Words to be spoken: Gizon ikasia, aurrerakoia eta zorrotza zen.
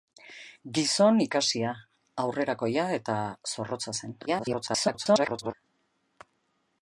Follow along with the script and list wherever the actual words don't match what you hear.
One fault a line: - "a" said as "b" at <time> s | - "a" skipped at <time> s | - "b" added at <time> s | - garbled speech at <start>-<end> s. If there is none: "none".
- garbled speech at 4.3-5.5 s